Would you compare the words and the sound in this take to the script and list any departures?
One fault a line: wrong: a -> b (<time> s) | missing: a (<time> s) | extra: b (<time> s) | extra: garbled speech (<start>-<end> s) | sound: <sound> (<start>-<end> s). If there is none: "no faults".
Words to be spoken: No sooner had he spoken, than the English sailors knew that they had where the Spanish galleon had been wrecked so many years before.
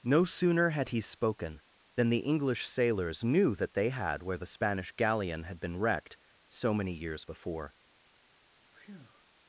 sound: breath (8.7-9.2 s)